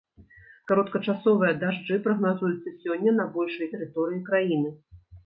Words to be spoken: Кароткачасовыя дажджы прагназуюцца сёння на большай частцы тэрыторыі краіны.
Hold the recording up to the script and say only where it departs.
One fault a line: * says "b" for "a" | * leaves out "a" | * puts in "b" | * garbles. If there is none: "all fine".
* leaves out "частцы"